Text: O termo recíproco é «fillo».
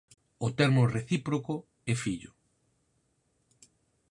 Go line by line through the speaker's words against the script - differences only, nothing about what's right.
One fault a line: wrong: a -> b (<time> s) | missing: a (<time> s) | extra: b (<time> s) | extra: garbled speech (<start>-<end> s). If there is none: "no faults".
no faults